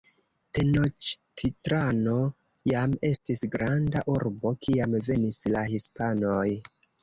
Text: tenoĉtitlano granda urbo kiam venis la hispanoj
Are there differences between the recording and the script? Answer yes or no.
yes